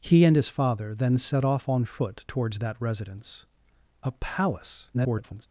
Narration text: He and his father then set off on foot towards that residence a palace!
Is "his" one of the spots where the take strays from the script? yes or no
no